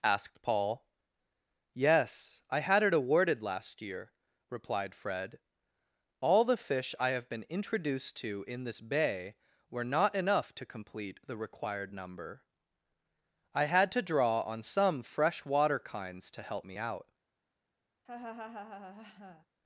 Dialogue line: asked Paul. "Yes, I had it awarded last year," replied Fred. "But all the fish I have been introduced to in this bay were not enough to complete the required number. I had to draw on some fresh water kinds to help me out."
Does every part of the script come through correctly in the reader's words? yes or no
no